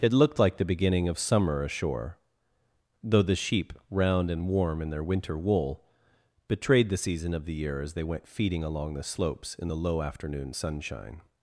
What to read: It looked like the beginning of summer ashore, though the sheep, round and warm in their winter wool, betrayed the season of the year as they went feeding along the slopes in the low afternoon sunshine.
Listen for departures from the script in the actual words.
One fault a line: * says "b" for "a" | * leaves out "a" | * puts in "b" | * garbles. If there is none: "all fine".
all fine